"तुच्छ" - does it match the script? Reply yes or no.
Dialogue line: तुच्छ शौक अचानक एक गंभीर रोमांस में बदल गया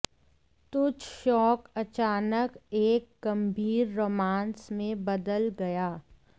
yes